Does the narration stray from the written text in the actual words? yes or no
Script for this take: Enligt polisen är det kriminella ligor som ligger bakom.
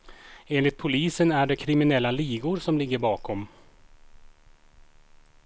no